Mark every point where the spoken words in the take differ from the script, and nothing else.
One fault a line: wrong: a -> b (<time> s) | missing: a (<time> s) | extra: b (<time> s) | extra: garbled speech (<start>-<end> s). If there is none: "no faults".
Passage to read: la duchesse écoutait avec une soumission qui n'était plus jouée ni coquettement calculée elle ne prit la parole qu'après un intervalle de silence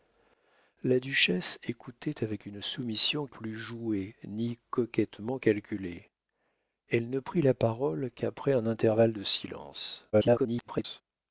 missing: qui n'était (3.3 s)
extra: garbled speech (10.1-11.0 s)